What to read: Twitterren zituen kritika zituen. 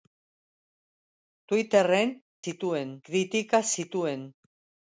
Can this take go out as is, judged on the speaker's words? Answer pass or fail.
pass